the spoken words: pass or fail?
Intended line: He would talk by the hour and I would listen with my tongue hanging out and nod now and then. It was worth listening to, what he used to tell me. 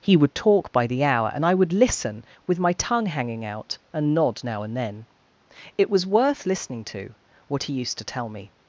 pass